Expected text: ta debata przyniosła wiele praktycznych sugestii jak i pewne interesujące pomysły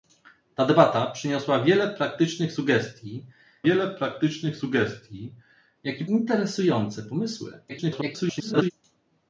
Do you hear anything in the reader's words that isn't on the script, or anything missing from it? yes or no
yes